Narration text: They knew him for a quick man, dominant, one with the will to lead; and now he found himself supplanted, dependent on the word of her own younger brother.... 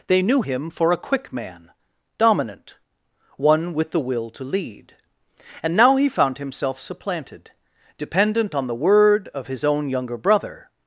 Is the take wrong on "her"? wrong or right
wrong